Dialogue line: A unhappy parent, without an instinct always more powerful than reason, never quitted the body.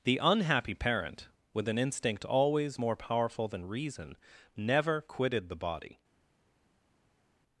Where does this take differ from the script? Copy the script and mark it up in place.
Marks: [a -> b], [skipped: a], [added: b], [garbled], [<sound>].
[A -> The] unhappy parent, [without -> with] an instinct always more powerful than reason, never quitted the body.